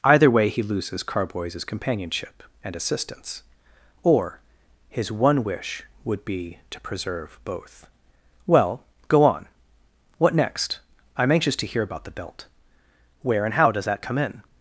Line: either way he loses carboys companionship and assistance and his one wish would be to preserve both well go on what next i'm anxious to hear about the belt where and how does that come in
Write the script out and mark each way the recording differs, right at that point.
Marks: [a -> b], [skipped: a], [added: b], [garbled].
either way he loses carboys companionship and assistance [and -> or] his one wish would be to preserve both well go on what next i'm anxious to hear about the belt where and how does that come in